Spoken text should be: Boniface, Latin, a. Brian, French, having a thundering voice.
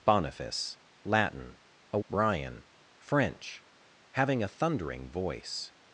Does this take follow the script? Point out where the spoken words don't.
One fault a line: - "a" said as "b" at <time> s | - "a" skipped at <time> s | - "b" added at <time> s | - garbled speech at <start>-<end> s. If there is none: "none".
none